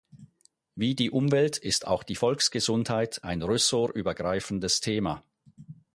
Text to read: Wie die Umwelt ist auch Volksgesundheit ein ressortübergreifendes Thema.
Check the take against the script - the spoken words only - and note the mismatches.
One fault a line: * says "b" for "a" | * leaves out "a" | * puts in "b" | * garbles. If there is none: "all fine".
* puts in "die"